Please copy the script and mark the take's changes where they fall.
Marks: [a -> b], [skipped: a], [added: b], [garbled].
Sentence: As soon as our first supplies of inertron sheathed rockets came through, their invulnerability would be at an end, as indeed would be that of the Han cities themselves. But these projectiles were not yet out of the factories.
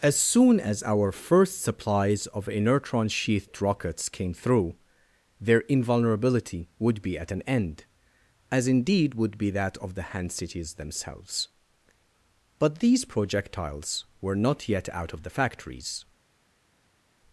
As soon as our first supplies of inertron sheathed rockets came through, their invulnerability would be at an end, as indeed would be that of the Han cities themselves. But these projectiles were not yet out of the factories.